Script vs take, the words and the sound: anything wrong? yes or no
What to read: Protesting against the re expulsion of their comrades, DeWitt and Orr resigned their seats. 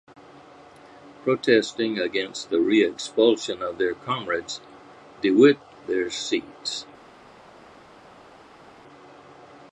yes